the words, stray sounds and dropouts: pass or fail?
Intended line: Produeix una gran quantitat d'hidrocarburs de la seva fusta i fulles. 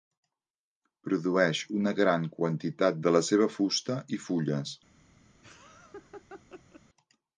fail